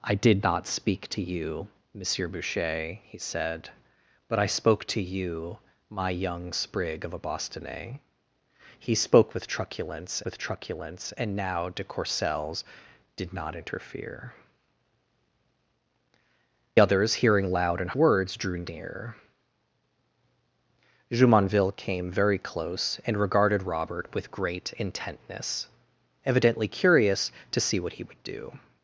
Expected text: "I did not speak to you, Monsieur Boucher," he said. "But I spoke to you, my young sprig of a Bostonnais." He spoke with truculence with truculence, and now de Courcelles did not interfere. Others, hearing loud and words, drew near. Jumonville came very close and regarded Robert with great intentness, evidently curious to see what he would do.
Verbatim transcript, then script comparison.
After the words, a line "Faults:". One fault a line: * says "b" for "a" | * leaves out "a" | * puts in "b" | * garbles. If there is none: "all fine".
"I did not speak to you, Monsieur Boucher," he said. "But I spoke to you, my young sprig of a Bostonnais." He spoke with truculence with truculence, and now de Courcelles did not interfere. Others, hearing loud and words, drew near. Jumonville came very close and regarded Robert with great intentness, evidently curious to see what he would do.
Faults:
all fine